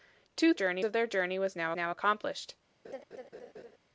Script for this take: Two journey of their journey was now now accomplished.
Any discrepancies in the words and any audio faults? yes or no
yes